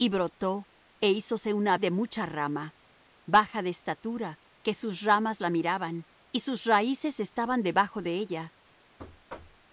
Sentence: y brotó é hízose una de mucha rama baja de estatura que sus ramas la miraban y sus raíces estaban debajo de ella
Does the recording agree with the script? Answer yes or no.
yes